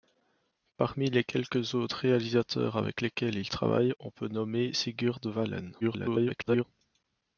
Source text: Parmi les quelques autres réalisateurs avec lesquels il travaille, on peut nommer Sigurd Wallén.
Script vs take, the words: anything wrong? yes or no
yes